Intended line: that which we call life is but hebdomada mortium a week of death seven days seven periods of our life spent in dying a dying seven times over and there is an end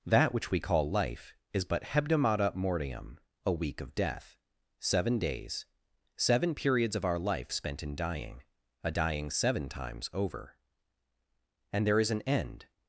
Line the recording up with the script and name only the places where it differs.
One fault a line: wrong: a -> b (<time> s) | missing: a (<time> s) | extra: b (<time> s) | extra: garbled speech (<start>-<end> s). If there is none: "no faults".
no faults